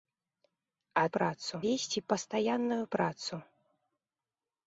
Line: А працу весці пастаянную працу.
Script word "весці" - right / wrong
right